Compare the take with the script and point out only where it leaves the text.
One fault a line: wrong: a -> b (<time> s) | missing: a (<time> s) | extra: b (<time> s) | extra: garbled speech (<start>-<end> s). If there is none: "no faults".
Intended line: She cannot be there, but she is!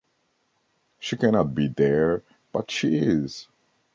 no faults